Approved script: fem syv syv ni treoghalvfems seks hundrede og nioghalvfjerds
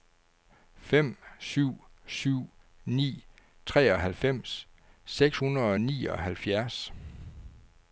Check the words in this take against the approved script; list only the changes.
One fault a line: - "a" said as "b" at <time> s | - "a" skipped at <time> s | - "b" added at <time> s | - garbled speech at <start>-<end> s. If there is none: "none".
none